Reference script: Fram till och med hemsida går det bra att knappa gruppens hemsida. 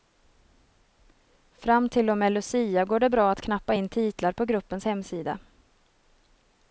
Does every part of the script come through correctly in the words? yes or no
no